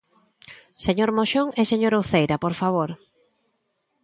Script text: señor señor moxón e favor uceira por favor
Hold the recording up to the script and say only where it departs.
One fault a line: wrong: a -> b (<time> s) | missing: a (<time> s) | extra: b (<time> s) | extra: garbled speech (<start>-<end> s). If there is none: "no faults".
missing: señor (1.1 s)
wrong: favor -> señora (1.7 s)